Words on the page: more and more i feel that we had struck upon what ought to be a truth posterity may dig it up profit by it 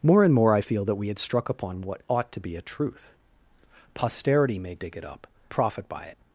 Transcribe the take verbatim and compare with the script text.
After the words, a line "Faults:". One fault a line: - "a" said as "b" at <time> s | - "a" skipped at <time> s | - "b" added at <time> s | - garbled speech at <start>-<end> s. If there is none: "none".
more and more i feel that we had struck upon what ought to be a truth posterity may dig it up profit by it
Faults:
none